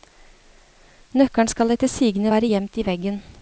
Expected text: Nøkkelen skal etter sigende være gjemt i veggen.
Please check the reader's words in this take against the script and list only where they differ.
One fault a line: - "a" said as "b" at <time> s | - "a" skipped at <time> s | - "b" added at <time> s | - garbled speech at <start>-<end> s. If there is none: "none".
none